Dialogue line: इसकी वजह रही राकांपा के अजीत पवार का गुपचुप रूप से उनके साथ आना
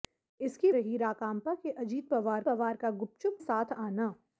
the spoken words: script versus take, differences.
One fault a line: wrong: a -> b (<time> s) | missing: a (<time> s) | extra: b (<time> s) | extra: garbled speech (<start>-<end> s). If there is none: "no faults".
missing: वजह (0.7 s)
extra: पवार (2.4 s)
missing: रूप से उनके (3.4 s)